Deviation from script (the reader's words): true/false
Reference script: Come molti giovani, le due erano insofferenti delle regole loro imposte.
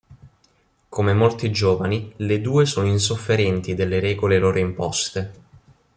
true